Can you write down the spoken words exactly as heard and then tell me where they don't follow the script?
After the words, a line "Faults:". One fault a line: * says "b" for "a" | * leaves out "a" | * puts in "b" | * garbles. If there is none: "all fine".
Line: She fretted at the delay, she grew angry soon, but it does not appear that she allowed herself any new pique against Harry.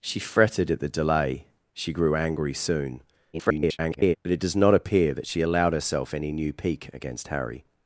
She fretted at the delay, she grew angry soon, [garbled] but it does not appear that she allowed herself any new pique against Harry.
Faults:
* garbles